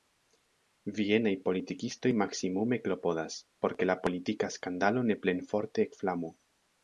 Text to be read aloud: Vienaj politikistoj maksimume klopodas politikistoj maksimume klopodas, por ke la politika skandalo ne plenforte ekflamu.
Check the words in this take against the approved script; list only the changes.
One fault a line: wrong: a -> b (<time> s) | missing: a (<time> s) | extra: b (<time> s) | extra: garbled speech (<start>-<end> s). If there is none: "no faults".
missing: politikistoj maksimume klopodas (3.4 s)